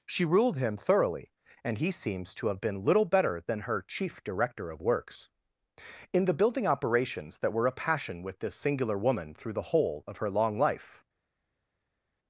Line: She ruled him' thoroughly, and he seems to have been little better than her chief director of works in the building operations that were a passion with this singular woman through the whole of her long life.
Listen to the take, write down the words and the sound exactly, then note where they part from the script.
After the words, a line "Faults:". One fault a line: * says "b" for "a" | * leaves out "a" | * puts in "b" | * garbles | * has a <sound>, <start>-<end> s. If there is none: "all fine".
She ruled him' thoroughly, and he seems to have been little better than her chief director of works in the building operations that were a passion with this singular woman through the whole of her long life.
Faults:
all fine